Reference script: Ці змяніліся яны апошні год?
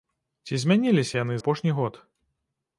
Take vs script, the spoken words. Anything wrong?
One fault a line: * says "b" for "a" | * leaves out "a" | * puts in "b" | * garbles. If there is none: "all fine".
all fine